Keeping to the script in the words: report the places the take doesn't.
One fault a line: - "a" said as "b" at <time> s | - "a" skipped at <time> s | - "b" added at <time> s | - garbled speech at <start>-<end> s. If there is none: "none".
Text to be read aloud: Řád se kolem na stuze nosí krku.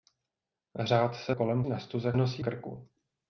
none